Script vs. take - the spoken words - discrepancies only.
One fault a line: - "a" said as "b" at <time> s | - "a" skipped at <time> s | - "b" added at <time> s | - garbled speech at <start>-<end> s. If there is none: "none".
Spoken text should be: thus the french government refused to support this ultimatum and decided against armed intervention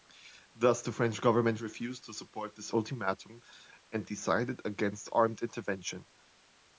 none